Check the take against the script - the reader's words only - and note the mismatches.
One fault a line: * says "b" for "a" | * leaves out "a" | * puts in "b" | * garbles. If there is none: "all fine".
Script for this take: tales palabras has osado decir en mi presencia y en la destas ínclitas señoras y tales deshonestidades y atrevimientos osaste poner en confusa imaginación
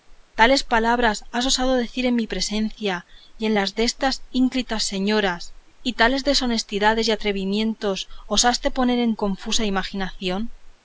all fine